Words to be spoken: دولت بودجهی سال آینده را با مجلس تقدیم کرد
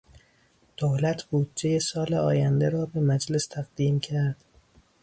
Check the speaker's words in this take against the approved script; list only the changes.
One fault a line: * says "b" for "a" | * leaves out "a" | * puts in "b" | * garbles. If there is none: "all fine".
* says "به" for "با"